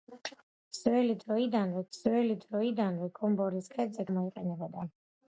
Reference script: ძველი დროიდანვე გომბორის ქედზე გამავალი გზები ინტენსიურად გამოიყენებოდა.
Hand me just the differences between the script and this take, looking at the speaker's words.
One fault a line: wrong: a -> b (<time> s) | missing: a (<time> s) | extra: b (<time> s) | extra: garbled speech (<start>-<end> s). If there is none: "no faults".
extra: ძველი დროიდანვე (2.0 s)
missing: გამავალი გზები ინტენსიურად (4.1 s)